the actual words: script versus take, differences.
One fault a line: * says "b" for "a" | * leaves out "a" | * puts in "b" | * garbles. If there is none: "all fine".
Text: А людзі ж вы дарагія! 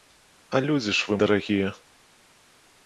all fine